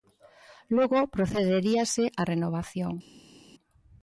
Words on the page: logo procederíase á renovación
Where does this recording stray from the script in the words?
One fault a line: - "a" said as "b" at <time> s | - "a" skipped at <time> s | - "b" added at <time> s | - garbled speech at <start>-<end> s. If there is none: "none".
none